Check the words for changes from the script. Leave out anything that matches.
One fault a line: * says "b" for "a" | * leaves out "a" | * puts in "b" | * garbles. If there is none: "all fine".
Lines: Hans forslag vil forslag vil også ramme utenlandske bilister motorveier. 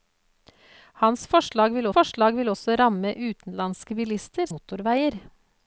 all fine